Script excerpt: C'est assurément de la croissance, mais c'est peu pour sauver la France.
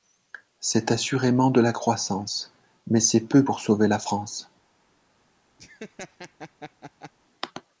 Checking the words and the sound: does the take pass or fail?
fail